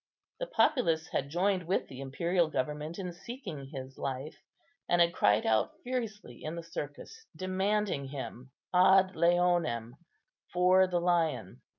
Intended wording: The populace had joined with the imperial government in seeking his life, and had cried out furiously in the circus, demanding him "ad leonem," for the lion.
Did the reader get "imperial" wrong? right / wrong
right